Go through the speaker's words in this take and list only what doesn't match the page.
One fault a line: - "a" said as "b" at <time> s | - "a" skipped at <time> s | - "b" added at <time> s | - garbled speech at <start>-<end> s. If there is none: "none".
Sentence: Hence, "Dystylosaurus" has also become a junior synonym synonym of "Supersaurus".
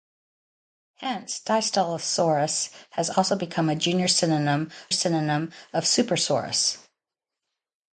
none